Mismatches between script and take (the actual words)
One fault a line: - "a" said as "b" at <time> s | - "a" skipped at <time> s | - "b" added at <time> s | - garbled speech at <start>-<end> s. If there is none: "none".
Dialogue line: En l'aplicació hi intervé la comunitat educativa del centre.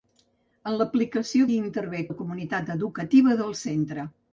none